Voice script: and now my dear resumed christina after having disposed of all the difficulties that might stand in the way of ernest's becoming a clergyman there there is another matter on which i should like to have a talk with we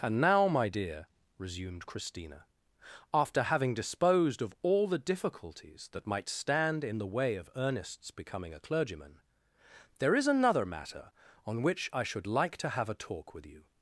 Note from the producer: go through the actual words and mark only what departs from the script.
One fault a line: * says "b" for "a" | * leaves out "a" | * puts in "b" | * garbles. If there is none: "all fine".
* leaves out "there"
* says "you" for "we"